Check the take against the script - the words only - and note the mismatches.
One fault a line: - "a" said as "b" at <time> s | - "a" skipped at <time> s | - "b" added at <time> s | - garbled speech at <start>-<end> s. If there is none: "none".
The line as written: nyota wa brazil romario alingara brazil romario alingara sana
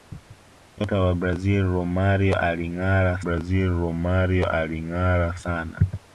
none